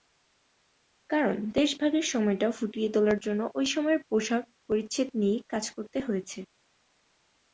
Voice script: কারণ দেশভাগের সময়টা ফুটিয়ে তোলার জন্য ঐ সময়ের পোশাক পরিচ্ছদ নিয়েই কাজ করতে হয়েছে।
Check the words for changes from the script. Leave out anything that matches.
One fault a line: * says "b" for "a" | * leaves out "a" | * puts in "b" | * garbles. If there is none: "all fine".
all fine